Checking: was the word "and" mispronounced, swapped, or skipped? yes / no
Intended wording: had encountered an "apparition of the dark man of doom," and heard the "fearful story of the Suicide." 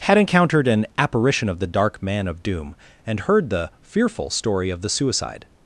no